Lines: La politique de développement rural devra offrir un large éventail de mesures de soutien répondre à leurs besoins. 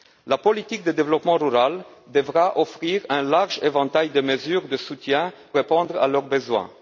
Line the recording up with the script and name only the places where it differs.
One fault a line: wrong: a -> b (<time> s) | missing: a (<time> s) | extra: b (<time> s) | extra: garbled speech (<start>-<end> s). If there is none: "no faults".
no faults